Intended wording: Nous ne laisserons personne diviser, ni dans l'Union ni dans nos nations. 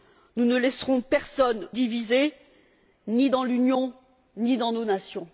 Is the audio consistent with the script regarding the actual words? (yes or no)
yes